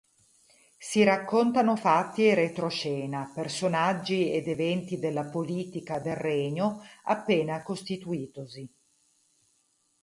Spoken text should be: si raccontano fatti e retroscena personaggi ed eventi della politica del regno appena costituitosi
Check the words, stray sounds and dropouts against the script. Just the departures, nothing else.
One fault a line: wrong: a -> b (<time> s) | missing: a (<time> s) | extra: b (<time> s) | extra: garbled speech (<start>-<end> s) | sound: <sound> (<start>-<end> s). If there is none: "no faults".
no faults